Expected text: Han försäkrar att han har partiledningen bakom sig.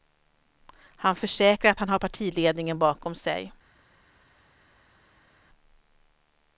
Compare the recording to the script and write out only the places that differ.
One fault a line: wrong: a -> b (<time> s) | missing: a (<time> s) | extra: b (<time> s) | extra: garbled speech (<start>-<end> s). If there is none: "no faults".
no faults